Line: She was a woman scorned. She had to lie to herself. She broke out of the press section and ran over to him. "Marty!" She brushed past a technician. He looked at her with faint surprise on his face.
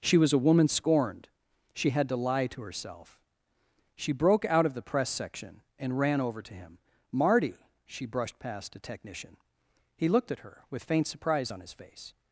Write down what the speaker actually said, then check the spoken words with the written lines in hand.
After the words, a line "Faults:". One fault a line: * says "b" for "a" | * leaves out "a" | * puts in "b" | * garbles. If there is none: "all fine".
She was a woman scorned. She had to lie to herself. She broke out of the press section and ran over to him. "Marty!" She brushed past a technician. He looked at her with faint surprise on his face.
Faults:
all fine